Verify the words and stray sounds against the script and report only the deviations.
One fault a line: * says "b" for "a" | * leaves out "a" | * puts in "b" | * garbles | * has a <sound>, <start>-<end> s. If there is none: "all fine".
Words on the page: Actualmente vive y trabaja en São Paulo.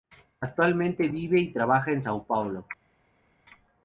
all fine